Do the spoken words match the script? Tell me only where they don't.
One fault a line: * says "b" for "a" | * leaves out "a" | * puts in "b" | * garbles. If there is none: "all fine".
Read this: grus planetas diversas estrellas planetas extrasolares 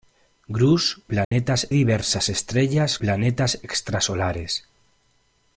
all fine